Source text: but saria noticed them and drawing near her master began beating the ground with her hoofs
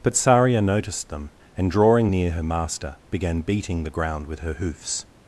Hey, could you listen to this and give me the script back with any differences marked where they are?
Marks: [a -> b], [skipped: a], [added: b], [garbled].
but saria noticed them and drawing near her master began beating the ground with her hoofs